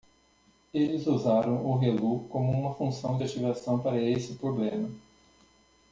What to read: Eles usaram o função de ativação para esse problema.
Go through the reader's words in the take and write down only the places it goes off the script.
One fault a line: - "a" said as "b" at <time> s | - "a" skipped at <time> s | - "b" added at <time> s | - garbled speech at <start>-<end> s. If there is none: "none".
- "relu como uma" added at 1.8 s